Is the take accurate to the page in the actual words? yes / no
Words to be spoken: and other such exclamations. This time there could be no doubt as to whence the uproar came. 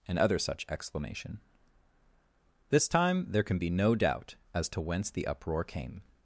no